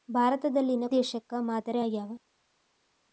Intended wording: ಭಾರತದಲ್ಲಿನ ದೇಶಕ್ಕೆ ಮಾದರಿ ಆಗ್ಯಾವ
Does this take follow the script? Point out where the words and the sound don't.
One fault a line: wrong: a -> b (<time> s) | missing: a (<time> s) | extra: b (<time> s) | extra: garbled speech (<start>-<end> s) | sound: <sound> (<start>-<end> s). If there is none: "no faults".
no faults